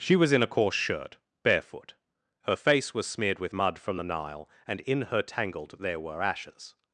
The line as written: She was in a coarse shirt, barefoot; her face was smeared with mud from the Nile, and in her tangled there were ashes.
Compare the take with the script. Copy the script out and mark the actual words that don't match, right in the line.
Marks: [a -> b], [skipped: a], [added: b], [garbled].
She was in a coarse shirt, barefoot; her face was smeared with mud from the Nile, and in her tangled there were ashes.